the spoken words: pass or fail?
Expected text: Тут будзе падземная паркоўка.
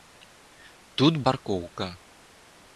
fail